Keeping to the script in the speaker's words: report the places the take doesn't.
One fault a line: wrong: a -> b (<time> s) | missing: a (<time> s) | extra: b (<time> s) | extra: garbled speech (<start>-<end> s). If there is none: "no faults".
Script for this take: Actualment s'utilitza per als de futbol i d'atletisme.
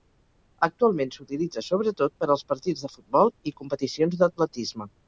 extra: sobretot (1.7 s)
extra: partits (2.5 s)
extra: competicions (3.6 s)